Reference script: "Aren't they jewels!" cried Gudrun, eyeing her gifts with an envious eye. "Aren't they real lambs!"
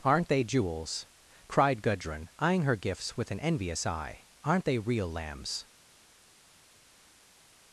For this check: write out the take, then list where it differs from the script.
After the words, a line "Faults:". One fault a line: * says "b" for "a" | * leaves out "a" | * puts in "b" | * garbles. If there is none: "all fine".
"Aren't they jewels!" cried Gudrun, eyeing her gifts with an envious eye. "Aren't they real lambs!"
Faults:
all fine